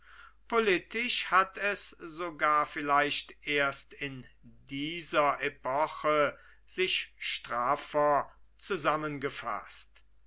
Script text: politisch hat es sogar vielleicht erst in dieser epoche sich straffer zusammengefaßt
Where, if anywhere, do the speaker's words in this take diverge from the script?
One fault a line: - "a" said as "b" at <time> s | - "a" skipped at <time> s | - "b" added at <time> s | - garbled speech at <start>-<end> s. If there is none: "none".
none